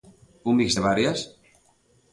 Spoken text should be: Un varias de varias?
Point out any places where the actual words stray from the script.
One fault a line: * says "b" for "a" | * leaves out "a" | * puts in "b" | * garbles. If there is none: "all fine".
* says "mix" for "varias"